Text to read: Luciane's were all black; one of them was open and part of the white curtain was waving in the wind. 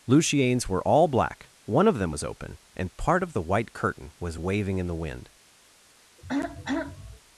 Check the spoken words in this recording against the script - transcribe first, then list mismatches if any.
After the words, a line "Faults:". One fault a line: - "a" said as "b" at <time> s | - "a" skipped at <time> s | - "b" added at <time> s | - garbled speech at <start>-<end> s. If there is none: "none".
Luciane's were all black; one of them was open and part of the white curtain was waving in the wind.
Faults:
none